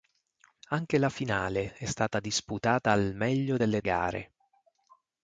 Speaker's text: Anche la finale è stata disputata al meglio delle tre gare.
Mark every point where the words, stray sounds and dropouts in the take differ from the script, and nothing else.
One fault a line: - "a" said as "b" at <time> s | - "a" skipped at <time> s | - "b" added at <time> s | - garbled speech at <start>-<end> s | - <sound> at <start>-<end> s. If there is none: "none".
- "tre" skipped at 3.8 s